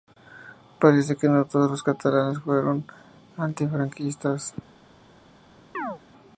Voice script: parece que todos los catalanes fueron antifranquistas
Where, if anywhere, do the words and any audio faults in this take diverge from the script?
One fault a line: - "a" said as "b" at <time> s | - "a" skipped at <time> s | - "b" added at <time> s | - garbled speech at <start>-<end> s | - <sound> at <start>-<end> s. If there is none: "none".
- "no" added at 1.3 s
- chirp at 5.7-6.0 s